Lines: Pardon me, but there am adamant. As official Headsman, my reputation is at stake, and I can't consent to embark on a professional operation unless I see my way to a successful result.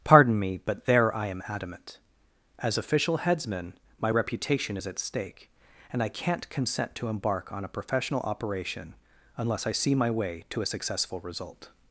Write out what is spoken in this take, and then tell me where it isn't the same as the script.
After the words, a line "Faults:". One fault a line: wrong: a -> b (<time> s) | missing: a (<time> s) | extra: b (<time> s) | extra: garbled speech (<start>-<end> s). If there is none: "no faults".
Pardon me, but there I am adamant. As official Headsman, my reputation is at stake, and I can't consent to embark on a professional operation unless I see my way to a successful result.
Faults:
extra: I (1.1 s)